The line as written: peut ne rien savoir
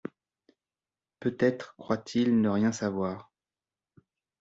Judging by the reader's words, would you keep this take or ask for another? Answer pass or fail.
fail